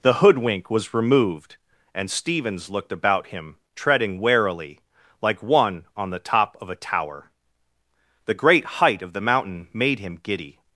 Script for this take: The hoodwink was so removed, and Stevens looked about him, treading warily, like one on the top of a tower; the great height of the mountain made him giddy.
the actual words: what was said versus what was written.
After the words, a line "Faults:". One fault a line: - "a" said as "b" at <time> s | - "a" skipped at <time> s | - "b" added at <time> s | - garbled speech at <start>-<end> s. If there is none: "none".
The hoodwink was removed, and Stevens looked about him, treading warily, like one on the top of a tower; the great height of the mountain made him giddy.
Faults:
- "so" skipped at 0.9 s